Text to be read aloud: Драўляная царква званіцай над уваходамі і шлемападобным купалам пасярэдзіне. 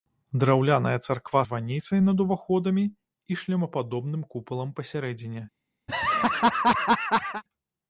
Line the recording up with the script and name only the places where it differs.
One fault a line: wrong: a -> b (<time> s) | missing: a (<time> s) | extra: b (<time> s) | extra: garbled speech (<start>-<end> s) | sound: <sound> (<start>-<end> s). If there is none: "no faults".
sound: laugh (5.9-7.4 s)